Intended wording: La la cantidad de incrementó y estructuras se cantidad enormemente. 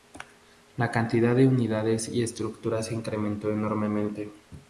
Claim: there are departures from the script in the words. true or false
true